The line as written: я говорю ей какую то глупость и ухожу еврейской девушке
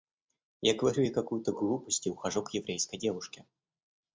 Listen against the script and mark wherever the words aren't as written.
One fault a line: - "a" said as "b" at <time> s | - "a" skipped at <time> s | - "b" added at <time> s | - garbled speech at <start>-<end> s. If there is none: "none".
- "к" added at 2.4 s